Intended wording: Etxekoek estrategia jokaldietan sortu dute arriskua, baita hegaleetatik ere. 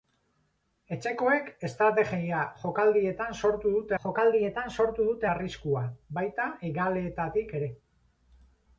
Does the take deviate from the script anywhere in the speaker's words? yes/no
yes